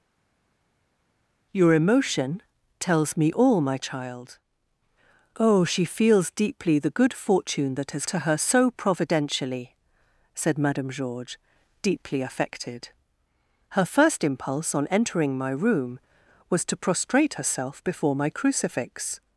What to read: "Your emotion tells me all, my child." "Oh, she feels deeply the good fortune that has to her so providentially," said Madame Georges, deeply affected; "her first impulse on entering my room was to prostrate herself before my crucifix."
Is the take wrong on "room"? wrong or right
right